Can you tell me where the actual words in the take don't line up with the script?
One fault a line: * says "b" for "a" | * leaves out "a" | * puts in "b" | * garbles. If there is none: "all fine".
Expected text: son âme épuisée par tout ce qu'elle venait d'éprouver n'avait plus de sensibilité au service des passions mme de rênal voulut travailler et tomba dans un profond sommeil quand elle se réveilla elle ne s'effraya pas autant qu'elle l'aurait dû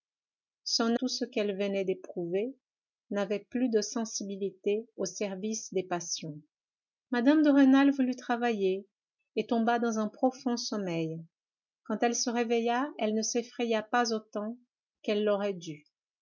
* leaves out "âme épuisée par"